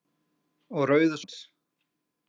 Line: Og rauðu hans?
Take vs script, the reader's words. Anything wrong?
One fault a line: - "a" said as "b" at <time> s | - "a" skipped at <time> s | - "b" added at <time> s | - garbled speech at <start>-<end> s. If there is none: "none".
none